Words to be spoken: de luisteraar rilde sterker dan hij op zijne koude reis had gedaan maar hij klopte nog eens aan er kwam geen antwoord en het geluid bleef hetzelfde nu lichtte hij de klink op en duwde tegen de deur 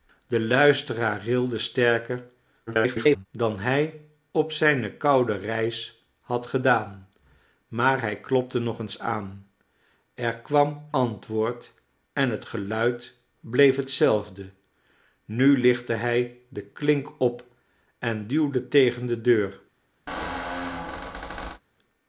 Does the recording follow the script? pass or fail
fail